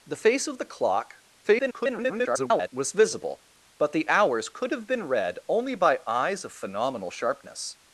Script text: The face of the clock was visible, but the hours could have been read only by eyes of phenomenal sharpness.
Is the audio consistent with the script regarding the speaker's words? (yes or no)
no